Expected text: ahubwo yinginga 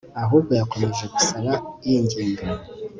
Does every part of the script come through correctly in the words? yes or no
no